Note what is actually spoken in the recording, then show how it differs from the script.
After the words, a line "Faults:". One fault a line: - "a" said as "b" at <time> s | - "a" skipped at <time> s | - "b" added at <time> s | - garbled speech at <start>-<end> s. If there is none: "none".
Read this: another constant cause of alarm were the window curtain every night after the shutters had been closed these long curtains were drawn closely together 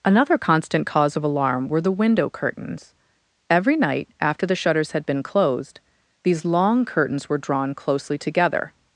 another constant cause of alarm were the window curtains every night after the shutters had been closed these long curtains were drawn closely together
Faults:
- "curtain" said as "curtains" at 2.3 s